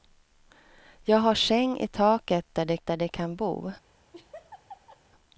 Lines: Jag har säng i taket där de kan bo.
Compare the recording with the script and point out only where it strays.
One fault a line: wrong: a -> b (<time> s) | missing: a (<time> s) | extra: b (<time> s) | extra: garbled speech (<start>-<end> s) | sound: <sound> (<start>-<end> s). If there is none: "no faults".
extra: där de (2.8 s)
sound: laugh (4.1-5.0 s)